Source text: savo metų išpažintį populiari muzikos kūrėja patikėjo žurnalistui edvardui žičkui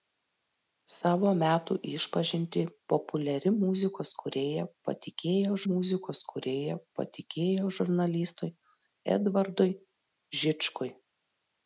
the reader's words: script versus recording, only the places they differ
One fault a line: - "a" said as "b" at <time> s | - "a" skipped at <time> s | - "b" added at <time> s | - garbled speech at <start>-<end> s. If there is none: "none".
- "muzikos kūrėja patikėjo" added at 5.6 s